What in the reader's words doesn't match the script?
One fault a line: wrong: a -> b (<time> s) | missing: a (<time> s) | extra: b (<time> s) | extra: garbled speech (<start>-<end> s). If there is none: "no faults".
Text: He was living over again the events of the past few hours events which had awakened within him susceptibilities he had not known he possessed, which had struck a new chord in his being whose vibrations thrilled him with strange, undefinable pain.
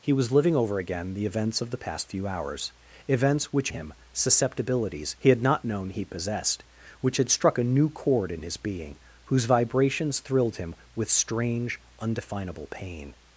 missing: had awakened within (3.7 s)